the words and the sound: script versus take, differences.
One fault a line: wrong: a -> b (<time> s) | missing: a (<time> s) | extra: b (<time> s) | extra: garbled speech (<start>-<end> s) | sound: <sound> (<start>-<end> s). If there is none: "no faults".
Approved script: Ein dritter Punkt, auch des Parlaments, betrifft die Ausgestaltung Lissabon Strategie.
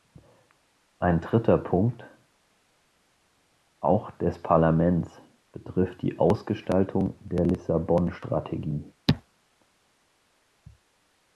extra: der (7.2 s)